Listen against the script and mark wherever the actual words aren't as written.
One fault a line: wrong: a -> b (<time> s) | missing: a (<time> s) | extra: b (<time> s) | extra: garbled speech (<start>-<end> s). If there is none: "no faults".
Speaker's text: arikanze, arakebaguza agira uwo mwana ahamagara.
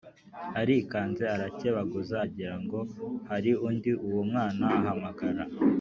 extra: ngo hari undi (2.6 s)